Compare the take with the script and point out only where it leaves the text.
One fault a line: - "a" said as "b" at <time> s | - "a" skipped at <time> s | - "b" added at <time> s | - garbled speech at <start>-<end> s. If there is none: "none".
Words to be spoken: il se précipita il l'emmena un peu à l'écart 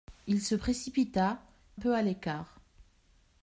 - "il l'emmena un" skipped at 1.4 s